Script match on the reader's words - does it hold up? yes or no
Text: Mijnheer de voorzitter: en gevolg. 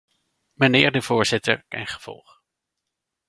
yes